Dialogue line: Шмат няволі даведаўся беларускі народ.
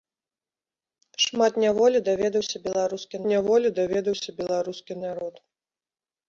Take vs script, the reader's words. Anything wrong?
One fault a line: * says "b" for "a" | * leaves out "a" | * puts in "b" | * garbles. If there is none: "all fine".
* puts in "няволі даведаўся беларускі"